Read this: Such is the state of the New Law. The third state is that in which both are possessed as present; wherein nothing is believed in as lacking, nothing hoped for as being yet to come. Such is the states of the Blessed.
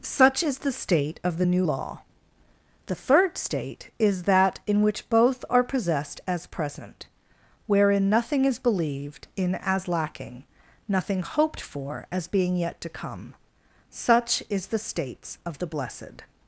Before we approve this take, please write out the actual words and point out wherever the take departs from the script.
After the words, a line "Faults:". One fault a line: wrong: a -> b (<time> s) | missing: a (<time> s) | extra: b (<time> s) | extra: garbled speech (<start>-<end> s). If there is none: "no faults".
Such is the state of the New Law. The third state is that in which both are possessed as present; wherein nothing is believed in as lacking, nothing hoped for as being yet to come. Such is the states of the Blessed.
Faults:
no faults